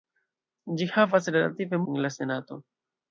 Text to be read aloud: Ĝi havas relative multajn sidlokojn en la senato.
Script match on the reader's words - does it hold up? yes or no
no